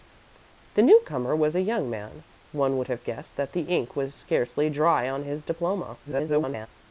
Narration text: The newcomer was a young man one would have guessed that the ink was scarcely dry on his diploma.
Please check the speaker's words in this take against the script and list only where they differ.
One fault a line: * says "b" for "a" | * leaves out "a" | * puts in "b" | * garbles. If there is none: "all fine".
* garbles